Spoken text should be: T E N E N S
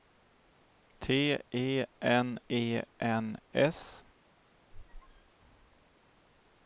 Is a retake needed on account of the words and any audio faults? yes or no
yes